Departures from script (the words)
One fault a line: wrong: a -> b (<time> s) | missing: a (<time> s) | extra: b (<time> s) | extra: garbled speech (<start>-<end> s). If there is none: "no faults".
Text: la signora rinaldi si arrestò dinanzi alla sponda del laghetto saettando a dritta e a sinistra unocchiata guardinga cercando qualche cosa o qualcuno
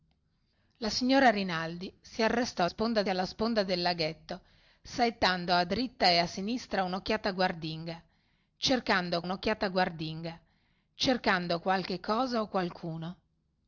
wrong: dinanzi -> sponda (2.6 s)
extra: unocchiata guardinga cercando (9.2 s)